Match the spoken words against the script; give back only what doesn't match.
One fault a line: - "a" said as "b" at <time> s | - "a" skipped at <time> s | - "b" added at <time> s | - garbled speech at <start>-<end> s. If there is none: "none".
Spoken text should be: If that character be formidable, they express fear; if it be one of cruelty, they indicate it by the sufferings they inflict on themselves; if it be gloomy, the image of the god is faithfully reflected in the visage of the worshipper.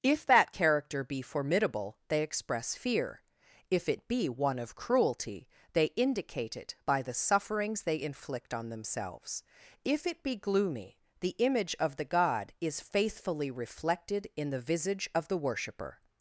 none